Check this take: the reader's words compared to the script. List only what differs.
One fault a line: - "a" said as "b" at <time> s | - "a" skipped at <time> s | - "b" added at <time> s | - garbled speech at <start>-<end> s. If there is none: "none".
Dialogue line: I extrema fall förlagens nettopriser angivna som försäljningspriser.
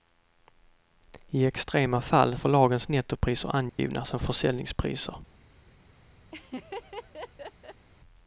none